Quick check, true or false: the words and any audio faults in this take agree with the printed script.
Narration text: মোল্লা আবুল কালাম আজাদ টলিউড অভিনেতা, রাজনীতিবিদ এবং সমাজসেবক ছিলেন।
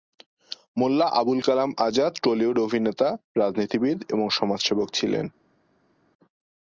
true